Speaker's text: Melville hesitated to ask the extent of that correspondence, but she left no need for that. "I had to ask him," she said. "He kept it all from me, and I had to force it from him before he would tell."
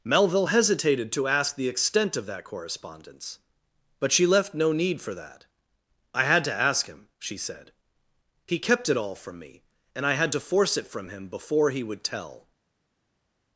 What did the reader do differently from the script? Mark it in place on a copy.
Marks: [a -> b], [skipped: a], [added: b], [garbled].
Melville hesitated to ask the extent of that correspondence, but she left no need for that. "I had to ask him," she said. "He kept it all from me, and I had to force it from him before he would tell."